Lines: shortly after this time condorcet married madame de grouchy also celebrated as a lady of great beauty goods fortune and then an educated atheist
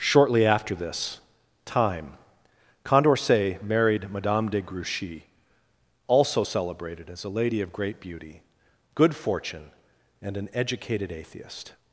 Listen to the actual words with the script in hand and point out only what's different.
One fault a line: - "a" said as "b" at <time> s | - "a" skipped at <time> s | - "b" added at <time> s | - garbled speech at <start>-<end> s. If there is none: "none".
- "goods" said as "good" at 8.9 s
- "then" skipped at 10.4 s